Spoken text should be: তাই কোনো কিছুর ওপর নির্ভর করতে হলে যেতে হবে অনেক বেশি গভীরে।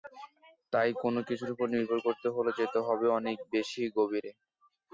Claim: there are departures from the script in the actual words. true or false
false